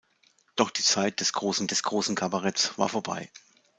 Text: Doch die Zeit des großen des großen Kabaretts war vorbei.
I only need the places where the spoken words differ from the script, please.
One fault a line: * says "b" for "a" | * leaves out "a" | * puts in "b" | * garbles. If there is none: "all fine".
all fine